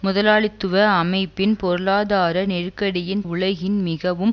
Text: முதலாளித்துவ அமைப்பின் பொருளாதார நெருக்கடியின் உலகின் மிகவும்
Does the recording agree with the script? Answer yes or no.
yes